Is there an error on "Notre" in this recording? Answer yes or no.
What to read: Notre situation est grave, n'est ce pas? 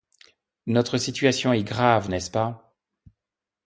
no